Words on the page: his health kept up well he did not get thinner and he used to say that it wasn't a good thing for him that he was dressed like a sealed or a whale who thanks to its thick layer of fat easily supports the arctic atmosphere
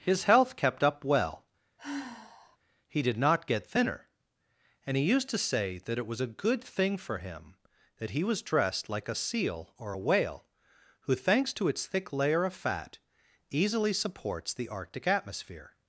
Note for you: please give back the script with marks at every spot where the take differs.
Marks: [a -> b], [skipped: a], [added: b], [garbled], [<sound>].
his health kept up well [sigh] he did not get thinner and he used to say that it [wasn't -> was] a good thing for him that he was dressed like a [sealed -> seal] or a whale who thanks to its thick layer of fat easily supports the arctic atmosphere